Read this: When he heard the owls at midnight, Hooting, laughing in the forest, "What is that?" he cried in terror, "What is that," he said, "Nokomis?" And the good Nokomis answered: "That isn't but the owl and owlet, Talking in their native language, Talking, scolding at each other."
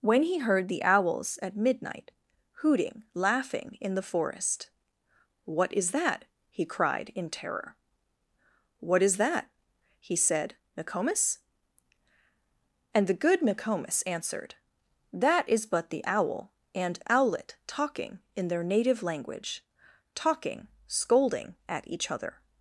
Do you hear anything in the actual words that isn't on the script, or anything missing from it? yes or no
yes